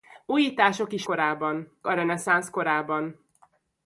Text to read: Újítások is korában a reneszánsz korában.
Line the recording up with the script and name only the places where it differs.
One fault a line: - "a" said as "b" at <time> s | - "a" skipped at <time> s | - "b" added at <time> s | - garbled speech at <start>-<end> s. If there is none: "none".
none